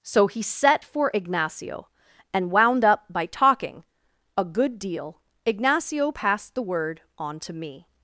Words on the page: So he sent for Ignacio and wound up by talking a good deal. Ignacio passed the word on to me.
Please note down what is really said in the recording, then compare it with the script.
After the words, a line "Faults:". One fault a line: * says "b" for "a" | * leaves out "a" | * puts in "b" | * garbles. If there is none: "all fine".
So he set for Ignacio and wound up by talking a good deal. Ignacio passed the word on to me.
Faults:
* says "set" for "sent"